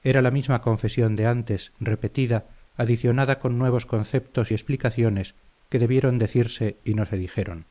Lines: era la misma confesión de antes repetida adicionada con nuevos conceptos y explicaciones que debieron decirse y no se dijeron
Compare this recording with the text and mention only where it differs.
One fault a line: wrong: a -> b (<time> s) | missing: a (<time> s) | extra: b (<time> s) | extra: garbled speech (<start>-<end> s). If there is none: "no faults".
no faults